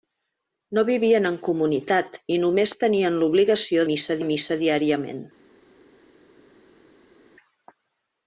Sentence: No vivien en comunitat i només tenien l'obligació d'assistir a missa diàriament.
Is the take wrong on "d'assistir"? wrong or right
wrong